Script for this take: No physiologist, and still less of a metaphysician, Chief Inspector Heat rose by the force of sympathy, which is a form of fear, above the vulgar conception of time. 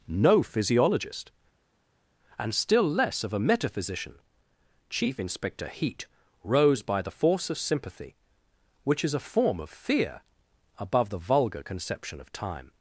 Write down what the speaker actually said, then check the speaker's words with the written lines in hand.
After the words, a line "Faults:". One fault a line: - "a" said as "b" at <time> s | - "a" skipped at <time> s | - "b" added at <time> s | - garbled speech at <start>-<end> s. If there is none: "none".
No physiologist, and still less of a metaphysician, Chief Inspector Heat rose by the force of sympathy, which is a form of fear, above the vulgar conception of time.
Faults:
none